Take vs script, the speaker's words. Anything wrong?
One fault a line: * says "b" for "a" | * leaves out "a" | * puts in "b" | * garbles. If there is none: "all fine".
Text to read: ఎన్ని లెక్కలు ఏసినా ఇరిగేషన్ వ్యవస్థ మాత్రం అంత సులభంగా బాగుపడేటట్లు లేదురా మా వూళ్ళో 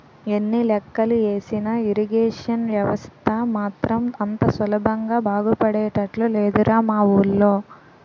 all fine